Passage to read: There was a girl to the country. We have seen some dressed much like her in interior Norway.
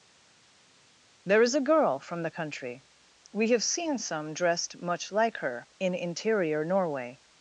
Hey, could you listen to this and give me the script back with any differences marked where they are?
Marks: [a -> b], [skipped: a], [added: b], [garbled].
There [was -> is] a girl [to -> from] the country. We have seen some dressed much like her in interior Norway.